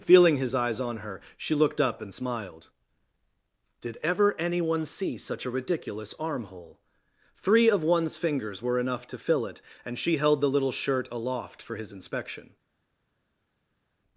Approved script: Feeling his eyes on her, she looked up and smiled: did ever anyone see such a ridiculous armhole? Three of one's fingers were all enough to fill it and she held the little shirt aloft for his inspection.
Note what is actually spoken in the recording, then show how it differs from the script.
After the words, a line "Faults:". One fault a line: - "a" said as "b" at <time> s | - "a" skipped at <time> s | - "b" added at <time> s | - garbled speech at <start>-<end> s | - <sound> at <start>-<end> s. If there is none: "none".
Feeling his eyes on her, she looked up and smiled: did ever anyone see such a ridiculous armhole? Three of one's fingers were enough to fill it and she held the little shirt aloft for his inspection.
Faults:
- "all" skipped at 8.8 s